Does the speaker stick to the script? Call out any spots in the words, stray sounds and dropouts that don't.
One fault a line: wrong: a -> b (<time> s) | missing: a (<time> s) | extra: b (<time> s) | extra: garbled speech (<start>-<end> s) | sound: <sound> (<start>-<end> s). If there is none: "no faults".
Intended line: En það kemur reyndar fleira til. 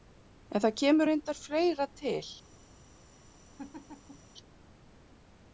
sound: laugh (3.6-4.3 s)